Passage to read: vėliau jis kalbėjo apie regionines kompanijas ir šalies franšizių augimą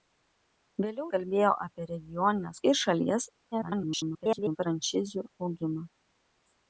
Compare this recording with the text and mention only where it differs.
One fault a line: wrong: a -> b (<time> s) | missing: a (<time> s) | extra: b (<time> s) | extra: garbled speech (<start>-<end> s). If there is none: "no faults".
missing: jis (1.0 s)
missing: kompanijas (2.6 s)
extra: garbled speech (3.5-4.6 s)